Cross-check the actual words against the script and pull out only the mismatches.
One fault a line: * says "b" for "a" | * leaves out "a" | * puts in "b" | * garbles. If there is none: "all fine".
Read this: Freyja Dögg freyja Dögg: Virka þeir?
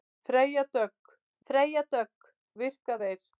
all fine